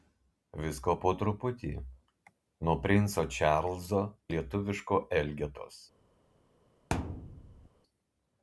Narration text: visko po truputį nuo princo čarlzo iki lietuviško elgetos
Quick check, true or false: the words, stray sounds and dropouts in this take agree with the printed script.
false